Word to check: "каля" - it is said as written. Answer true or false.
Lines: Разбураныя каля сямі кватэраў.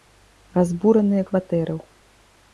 false